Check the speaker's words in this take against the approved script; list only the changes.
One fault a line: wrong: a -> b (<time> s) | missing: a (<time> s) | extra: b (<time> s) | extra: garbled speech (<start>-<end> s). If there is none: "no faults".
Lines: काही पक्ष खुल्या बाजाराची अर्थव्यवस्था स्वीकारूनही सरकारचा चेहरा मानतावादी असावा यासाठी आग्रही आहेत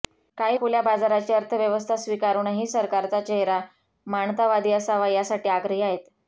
missing: पक्ष (0.6 s)